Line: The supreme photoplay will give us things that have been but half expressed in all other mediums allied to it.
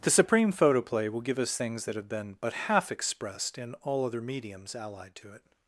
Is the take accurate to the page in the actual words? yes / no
yes